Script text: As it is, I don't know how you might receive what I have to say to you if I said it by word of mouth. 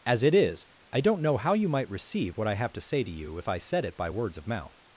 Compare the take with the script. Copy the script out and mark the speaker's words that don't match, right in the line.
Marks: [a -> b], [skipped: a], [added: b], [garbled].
As it is, I don't know how you might receive what I have to say to you if I said it by [word -> words] of mouth.